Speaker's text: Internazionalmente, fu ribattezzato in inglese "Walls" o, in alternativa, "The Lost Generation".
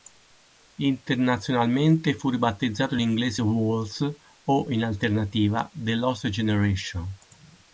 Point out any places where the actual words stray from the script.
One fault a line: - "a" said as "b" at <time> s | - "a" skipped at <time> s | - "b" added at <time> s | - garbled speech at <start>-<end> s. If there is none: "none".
none